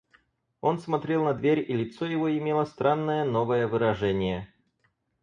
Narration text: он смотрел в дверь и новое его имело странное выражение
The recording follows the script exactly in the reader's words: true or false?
false